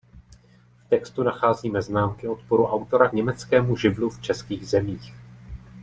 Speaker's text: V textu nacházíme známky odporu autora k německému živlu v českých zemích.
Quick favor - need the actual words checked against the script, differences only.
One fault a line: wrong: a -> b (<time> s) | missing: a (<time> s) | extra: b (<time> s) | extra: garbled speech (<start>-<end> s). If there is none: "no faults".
missing: k (3.1 s)